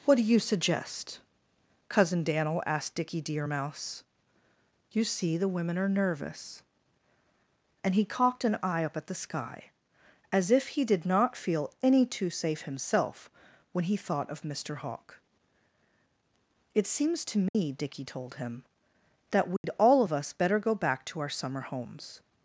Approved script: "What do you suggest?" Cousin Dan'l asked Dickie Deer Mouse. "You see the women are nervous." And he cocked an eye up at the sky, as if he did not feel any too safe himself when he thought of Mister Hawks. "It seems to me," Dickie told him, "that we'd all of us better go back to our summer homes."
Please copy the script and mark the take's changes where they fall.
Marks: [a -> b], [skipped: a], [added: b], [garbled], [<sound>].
"What do you suggest?" Cousin Dan'l asked Dickie Deer Mouse. "You see the women are nervous." And he cocked an eye up at the sky, as if he did not feel any too safe himself when he thought of Mister [Hawks. -> Hawk] "It seems to me," [dropout] Dickie told him, "that we'd [dropout] all of us better go back to our summer homes."